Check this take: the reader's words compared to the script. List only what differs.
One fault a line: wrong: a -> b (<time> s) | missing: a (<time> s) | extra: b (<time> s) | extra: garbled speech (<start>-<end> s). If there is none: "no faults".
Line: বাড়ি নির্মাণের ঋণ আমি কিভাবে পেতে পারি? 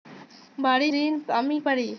missing: নির্মাণের (0.9 s)
missing: কিভাবে পেতে (1.6 s)